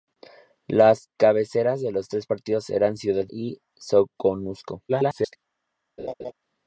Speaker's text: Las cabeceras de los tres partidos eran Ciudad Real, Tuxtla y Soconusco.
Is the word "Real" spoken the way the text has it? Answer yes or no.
no